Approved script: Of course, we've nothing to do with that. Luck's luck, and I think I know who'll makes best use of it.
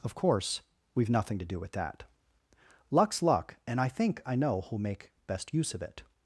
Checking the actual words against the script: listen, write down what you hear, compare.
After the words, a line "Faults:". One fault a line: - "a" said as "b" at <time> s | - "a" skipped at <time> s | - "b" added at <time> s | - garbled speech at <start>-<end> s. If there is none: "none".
Of course, we've nothing to do with that. Luck's luck, and I think I know who'll make best use of it.
Faults:
- "makes" said as "make" at 4.8 s